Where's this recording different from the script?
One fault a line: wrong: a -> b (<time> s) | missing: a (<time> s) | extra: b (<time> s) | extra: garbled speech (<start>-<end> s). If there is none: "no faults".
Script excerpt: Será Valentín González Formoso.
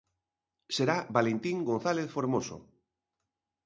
no faults